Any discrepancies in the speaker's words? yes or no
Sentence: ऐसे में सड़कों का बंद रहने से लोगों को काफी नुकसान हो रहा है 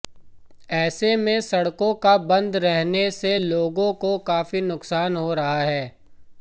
no